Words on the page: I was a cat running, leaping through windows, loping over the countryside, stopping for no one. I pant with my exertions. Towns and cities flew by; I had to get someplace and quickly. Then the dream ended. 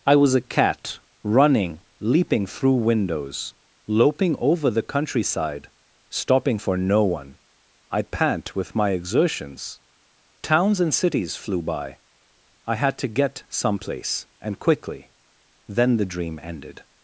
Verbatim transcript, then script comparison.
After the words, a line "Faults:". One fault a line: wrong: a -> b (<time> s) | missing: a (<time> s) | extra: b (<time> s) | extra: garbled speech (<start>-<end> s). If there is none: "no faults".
I was a cat running, leaping through windows, loping over the countryside, stopping for no one. I pant with my exertions. Towns and cities flew by; I had to get someplace and quickly. Then the dream ended.
Faults:
no faults